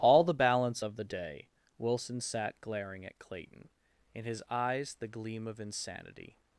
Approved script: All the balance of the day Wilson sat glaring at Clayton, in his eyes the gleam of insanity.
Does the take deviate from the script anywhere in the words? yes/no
no